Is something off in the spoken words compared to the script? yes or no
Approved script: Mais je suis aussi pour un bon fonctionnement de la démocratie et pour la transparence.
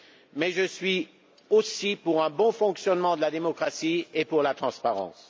no